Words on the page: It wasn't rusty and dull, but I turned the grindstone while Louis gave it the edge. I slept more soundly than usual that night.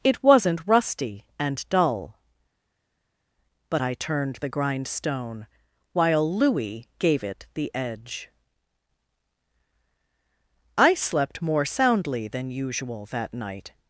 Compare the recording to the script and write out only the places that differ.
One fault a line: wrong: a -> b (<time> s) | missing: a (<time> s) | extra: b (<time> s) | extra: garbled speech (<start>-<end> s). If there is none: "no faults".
no faults